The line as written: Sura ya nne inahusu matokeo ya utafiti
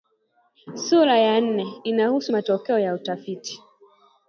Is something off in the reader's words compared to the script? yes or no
no